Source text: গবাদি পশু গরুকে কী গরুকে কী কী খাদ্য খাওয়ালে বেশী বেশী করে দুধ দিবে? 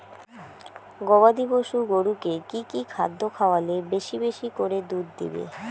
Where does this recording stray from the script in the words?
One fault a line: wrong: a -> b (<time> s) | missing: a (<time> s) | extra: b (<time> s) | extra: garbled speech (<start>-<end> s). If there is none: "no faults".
missing: গরুকে কী (2.6 s)